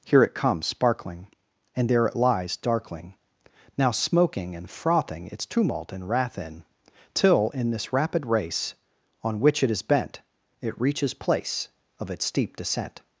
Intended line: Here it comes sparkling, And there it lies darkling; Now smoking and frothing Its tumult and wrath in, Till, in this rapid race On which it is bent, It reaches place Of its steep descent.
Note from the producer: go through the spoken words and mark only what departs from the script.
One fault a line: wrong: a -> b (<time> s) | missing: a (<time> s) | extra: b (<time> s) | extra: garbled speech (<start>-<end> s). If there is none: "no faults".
no faults